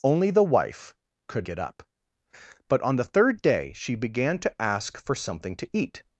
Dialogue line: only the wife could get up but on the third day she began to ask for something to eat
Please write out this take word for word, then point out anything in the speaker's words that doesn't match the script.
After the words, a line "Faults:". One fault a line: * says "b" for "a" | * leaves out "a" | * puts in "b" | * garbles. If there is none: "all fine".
only the wife could get up but on the third day she began to ask for something to eat
Faults:
all fine